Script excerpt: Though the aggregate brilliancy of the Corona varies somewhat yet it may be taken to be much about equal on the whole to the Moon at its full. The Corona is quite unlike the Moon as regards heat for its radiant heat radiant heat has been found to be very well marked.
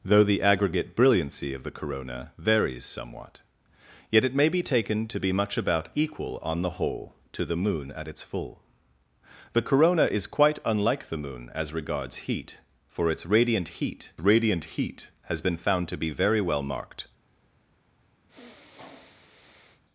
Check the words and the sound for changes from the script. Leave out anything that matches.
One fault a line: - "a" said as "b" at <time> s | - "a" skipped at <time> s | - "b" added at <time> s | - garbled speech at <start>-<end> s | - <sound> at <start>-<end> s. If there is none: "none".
- sniff at 18.3-19.8 s